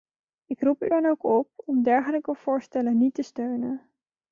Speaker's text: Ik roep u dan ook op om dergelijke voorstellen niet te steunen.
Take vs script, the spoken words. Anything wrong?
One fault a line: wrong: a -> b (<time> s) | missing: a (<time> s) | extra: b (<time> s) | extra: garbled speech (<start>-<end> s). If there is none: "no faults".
no faults